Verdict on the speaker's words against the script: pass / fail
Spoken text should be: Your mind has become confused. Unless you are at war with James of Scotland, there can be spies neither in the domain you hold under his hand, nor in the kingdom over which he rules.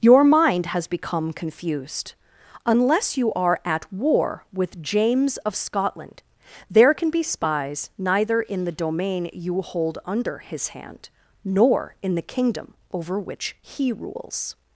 pass